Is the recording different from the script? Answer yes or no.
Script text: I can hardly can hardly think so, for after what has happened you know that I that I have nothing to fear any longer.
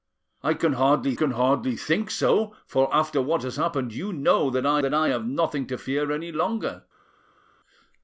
no